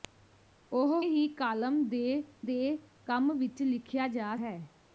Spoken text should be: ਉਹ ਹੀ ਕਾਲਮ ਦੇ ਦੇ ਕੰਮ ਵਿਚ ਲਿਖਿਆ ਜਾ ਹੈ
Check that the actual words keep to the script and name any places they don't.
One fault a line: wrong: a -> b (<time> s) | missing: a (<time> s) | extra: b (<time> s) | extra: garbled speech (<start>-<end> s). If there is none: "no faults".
no faults